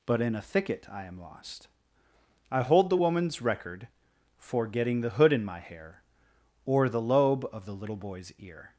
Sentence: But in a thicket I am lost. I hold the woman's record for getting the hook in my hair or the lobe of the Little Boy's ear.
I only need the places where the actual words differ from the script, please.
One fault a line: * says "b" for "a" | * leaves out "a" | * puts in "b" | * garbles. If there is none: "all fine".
* says "hood" for "hook"